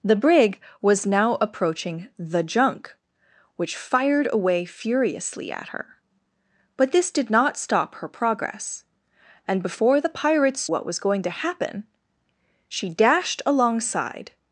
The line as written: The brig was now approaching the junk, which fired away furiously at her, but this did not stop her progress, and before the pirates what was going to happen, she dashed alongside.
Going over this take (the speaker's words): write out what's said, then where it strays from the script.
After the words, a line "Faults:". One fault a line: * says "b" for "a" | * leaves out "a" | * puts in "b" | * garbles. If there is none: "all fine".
The brig was now approaching the junk, which fired away furiously at her, but this did not stop her progress, and before the pirates what was going to happen, she dashed alongside.
Faults:
all fine